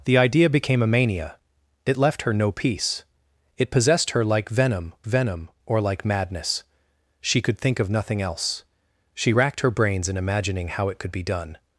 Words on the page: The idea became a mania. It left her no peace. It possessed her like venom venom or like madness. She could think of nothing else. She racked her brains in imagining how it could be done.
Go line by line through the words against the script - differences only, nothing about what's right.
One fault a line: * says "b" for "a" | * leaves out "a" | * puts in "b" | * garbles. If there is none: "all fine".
all fine